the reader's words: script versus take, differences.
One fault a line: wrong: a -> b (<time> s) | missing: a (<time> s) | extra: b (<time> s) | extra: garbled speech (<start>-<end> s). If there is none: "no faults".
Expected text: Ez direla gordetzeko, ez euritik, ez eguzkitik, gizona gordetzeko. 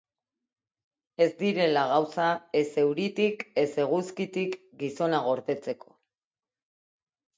wrong: gordetzeko -> gauza (1.9 s)